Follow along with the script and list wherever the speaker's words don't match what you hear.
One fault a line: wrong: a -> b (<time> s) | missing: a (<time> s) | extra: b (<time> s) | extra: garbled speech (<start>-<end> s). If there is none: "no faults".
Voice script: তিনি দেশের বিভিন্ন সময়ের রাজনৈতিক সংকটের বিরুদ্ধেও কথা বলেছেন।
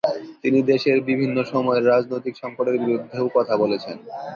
no faults